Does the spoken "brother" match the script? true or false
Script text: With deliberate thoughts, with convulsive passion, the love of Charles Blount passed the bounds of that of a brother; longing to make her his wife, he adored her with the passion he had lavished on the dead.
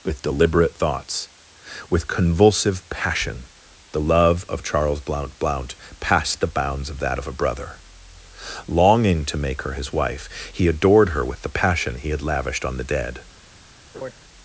true